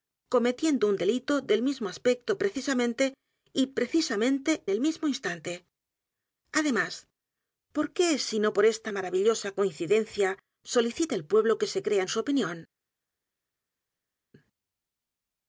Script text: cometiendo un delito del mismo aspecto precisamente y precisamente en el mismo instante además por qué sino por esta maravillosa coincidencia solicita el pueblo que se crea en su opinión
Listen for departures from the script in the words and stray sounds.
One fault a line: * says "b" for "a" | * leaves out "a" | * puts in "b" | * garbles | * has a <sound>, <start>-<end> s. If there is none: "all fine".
* leaves out "en"